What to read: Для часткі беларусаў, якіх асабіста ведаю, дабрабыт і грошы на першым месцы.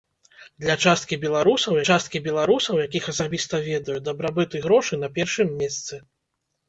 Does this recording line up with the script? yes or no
no